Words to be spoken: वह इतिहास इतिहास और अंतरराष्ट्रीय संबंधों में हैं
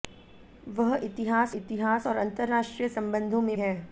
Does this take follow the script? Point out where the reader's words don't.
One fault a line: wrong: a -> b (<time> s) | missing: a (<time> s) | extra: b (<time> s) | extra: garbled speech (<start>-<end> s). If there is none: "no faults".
no faults